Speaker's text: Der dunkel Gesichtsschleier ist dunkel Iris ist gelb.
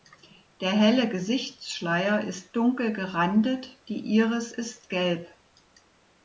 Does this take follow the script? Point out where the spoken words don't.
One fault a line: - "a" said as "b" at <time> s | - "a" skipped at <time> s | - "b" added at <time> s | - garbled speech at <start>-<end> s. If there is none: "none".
- "dunkel" said as "helle" at 0.7 s
- "gerandet die" added at 2.9 s